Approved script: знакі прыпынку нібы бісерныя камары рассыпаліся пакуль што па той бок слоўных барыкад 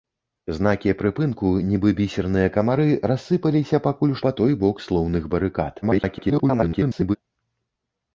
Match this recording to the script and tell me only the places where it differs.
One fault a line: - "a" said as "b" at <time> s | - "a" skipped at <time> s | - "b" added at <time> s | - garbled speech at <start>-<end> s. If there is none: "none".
- "што" skipped at 4.2 s
- garbled speech at 5.8-7.2 s